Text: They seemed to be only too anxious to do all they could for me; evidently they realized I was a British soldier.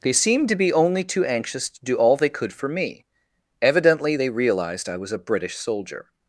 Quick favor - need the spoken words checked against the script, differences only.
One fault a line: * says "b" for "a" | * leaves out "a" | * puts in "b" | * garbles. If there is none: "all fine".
all fine